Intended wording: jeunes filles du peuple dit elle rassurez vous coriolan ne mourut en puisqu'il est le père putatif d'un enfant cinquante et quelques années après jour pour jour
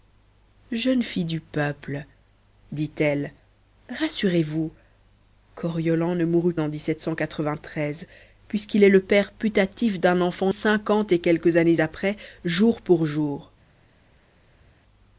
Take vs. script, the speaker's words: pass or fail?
pass